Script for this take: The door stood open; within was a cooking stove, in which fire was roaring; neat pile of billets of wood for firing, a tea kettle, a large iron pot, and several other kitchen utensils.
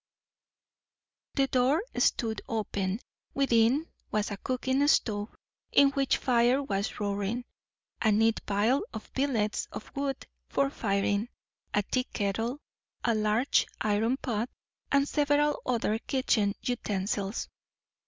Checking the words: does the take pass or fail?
fail